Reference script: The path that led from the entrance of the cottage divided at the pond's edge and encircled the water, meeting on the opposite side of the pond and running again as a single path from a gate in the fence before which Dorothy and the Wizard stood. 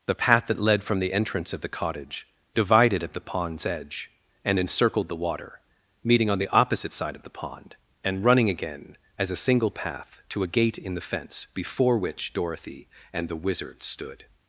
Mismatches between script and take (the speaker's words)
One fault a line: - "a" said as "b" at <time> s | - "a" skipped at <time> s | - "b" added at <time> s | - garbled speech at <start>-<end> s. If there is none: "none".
- "from" said as "to" at 10.3 s